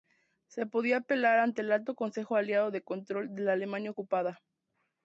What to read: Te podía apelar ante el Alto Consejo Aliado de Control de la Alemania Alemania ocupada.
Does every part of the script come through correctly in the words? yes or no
no